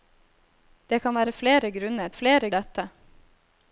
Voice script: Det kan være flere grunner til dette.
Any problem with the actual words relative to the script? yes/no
yes